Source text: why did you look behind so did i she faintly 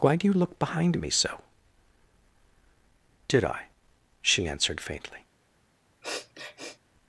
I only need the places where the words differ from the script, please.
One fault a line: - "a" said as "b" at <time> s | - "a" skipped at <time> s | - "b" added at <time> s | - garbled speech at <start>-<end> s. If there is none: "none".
- "did" said as "do" at 0.1 s
- "me" added at 1.0 s
- "answered" added at 4.5 s